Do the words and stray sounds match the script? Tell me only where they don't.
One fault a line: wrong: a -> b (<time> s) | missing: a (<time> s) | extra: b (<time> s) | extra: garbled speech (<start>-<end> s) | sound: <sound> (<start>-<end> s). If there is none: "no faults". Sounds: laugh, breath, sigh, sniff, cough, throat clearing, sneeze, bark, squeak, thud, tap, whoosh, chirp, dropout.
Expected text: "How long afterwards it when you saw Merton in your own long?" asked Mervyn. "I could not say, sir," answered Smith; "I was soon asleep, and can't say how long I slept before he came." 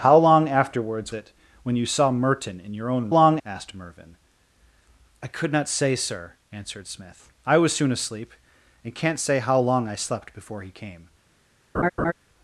sound: laugh (11.7-12.1 s)